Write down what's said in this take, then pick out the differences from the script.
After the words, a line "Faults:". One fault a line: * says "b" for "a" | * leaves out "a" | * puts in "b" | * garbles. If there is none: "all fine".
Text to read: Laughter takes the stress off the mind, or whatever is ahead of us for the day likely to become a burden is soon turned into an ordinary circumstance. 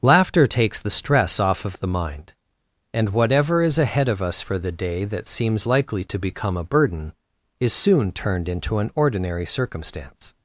Laughter takes the stress off of the mind, and whatever is ahead of us for the day that seems likely to become a burden is soon turned into an ordinary circumstance.
Faults:
* puts in "of"
* says "and" for "or"
* puts in "that seems"